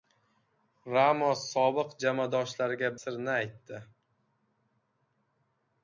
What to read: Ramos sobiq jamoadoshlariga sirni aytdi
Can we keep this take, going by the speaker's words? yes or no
yes